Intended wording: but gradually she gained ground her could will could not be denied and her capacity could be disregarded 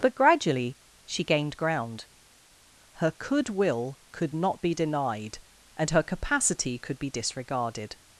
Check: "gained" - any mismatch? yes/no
no